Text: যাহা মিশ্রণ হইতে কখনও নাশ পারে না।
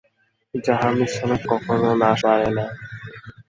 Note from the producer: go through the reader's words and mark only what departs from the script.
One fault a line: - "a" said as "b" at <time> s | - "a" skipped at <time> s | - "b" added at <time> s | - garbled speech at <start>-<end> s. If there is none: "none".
none